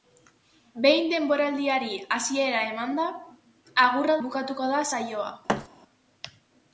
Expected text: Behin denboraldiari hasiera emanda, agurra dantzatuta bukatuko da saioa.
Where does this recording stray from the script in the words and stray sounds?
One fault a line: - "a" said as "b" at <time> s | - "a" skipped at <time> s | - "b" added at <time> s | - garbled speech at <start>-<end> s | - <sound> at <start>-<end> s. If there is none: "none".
- "dantzatuta" skipped at 4.2 s
- thud at 5.5-5.7 s